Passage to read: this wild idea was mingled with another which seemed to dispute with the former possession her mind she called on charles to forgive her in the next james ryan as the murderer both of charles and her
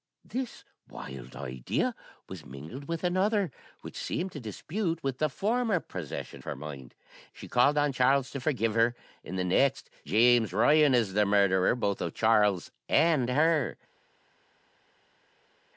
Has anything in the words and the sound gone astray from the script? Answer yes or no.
no